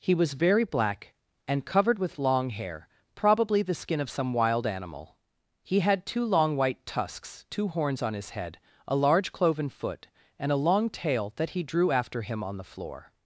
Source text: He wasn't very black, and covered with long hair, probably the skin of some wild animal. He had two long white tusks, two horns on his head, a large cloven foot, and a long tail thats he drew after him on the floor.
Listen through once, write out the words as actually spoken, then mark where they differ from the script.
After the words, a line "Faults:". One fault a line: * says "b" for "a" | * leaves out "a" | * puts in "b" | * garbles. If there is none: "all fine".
He was very black, and covered with long hair, probably the skin of some wild animal. He had two long white tusks, two horns on his head, a large cloven foot, and a long tail that he drew after him on the floor.
Faults:
* says "was" for "wasn't"
* says "that" for "thats"